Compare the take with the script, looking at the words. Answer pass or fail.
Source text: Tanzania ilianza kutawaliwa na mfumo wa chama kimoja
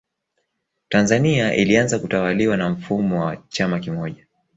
pass